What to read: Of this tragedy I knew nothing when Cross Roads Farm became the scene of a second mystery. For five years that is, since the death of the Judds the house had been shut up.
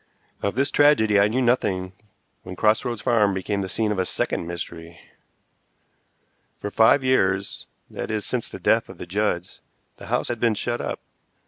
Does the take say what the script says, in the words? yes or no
yes